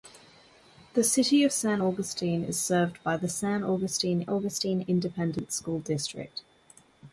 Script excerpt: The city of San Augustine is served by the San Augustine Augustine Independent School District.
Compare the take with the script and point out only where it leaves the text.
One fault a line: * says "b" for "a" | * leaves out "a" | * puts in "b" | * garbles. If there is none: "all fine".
all fine